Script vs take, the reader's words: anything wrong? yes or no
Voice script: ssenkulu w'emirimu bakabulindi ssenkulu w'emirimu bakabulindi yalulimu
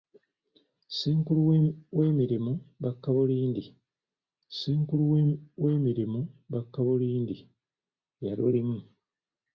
no